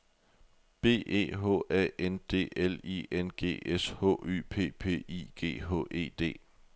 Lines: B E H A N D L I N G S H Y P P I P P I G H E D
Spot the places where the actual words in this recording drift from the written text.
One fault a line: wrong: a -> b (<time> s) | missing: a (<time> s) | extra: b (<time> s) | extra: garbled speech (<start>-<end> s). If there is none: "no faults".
missing: P P I (5.3 s)